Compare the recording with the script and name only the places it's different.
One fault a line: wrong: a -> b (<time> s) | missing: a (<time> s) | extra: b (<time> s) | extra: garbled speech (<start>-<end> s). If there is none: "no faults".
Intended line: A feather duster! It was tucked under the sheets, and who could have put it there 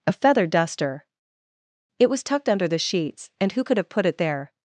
no faults